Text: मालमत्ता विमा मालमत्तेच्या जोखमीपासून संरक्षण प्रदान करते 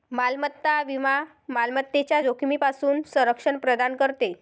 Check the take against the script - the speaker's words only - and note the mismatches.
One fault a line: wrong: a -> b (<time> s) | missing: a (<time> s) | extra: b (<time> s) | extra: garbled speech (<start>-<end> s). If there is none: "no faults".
no faults